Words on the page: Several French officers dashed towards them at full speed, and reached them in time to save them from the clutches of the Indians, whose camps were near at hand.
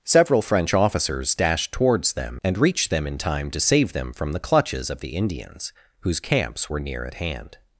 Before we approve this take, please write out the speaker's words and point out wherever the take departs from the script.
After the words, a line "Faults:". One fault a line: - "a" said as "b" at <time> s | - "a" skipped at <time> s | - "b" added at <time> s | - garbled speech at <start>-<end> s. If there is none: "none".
Several French officers dashed towards them and reached them in time to save them from the clutches of the Indians, whose camps were near at hand.
Faults:
- "at full speed" skipped at 2.4 s